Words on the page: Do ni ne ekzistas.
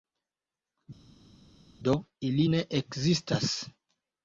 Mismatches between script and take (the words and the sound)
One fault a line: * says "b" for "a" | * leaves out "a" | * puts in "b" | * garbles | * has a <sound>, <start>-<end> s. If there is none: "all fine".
* says "ili" for "ni"